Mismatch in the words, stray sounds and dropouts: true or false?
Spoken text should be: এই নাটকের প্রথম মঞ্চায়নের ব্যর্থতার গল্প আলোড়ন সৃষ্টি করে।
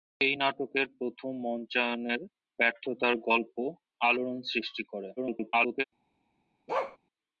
true